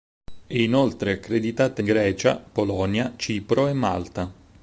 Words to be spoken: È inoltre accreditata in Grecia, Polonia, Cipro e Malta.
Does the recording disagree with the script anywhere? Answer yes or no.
yes